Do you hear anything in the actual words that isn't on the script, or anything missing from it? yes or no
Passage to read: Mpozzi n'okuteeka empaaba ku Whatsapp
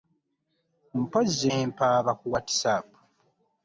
yes